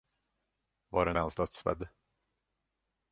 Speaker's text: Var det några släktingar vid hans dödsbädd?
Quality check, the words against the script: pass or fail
fail